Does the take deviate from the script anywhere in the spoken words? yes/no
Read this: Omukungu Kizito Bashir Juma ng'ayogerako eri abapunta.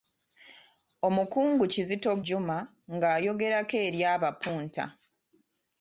yes